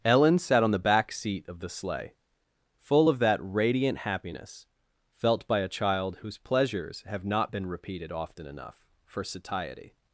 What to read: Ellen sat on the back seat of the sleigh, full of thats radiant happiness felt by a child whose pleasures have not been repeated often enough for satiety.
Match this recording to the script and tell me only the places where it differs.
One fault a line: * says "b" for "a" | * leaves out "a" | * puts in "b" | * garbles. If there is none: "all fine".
* says "that" for "thats"